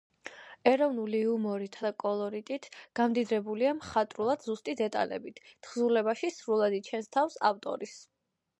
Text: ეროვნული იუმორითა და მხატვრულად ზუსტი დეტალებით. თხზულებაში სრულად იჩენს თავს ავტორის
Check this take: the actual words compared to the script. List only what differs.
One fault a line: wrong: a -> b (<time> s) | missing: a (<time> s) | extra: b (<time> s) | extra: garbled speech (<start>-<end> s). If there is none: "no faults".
extra: კოლორიტით გამდიდრებულია (2.0 s)